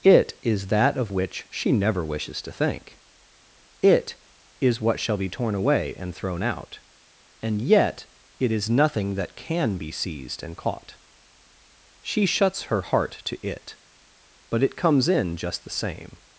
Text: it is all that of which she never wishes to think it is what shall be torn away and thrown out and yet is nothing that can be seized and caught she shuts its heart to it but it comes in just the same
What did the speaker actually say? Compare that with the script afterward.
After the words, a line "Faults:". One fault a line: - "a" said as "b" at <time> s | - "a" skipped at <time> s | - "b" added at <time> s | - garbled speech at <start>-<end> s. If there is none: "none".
it is that of which she never wishes to think it is what shall be torn away and thrown out and yet it is nothing that can be seized and caught she shuts her heart to it but it comes in just the same
Faults:
- "all" skipped at 0.7 s
- "it" added at 8.4 s
- "its" said as "her" at 12.6 s